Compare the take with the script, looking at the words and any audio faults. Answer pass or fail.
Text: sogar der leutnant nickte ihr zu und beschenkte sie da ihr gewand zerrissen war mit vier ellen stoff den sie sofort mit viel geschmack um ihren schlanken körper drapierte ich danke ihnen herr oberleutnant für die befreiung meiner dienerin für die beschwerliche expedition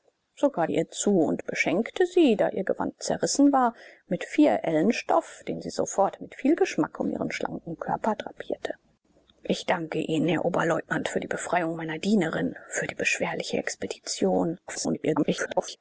fail